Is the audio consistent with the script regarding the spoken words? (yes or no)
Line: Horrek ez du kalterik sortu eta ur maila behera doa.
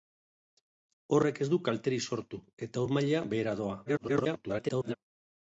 no